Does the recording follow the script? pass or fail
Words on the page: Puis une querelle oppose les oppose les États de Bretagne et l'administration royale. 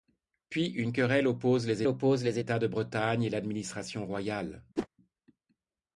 pass